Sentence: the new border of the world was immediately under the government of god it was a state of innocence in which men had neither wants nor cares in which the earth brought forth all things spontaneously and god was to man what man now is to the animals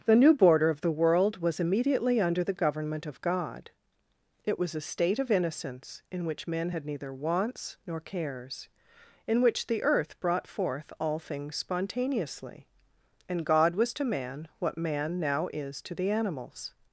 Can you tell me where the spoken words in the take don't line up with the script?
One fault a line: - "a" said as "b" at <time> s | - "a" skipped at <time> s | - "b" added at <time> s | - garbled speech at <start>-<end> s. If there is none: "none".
none